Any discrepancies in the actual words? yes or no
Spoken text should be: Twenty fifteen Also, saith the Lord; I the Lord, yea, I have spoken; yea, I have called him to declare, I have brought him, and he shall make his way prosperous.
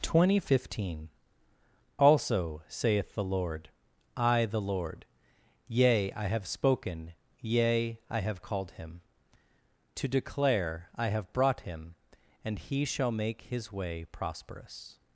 no